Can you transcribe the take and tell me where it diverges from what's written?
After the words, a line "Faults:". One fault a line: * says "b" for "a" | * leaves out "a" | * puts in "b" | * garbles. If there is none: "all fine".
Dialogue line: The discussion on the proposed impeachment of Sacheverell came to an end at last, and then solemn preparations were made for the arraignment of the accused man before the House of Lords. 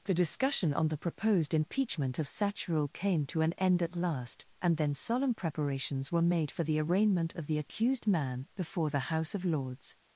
The discussion on the proposed impeachment of Sacheverell came to an end at last, and then solemn preparations were made for the arraignment of the accused man before the House of Lords.
Faults:
all fine